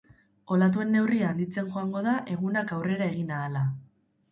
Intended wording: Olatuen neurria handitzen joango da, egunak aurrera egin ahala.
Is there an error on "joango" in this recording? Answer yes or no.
no